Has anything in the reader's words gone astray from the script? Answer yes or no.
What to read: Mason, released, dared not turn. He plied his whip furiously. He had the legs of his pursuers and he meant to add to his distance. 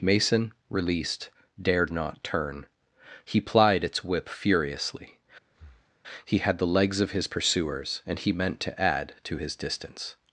yes